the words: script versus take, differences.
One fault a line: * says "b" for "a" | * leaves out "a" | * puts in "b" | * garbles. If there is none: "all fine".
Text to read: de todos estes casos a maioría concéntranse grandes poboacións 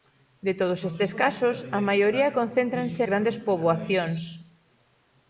all fine